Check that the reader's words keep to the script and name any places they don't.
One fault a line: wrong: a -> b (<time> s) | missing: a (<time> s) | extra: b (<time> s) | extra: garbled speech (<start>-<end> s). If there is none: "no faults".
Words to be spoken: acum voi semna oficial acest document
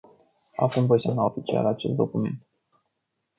no faults